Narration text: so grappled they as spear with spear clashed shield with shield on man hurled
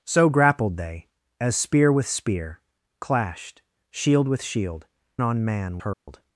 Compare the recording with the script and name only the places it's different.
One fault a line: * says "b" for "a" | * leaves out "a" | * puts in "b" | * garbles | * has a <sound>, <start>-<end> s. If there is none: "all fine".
* has a dropout, 5.9-6.1 s